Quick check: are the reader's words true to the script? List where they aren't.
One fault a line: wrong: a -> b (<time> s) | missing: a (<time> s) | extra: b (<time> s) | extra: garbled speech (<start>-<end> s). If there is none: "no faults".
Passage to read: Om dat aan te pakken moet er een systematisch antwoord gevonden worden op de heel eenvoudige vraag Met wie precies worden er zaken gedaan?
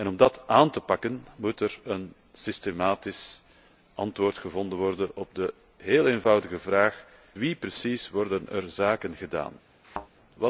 missing: Met (7.0 s)